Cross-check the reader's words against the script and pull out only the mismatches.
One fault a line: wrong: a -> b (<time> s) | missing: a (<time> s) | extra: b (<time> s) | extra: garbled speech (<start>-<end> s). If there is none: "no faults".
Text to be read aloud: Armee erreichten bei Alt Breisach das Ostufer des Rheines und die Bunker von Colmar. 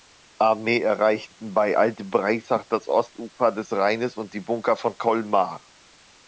no faults